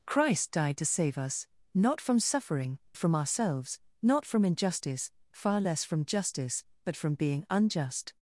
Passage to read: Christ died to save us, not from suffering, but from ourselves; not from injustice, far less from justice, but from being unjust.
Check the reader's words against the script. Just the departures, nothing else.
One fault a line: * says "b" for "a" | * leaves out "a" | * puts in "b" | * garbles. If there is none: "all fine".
* leaves out "but"